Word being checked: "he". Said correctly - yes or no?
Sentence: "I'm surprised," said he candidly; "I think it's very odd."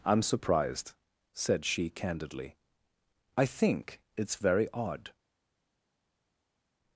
no